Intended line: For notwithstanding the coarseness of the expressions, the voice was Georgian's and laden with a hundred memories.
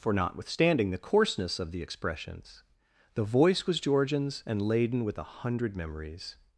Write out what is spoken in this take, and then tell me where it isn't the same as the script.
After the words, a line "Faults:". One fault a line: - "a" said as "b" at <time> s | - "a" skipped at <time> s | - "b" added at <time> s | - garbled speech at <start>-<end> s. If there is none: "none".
For notwithstanding the coarseness of the expressions, the voice was Georgian's and laden with a hundred memories.
Faults:
none